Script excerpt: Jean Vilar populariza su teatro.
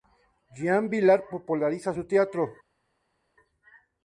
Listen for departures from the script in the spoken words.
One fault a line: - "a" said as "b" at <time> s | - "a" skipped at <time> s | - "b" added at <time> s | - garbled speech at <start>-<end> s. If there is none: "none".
none